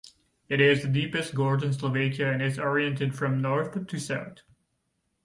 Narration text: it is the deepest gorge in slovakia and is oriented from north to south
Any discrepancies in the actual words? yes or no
no